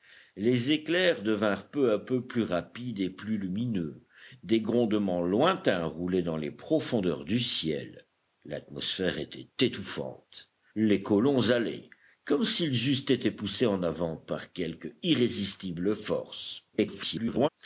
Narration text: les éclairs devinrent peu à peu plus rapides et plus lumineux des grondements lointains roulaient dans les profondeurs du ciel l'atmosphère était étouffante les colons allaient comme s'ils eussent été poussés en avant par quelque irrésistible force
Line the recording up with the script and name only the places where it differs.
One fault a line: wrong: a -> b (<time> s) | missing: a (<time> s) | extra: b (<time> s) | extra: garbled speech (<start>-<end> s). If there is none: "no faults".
extra: garbled speech (16.7-17.5 s)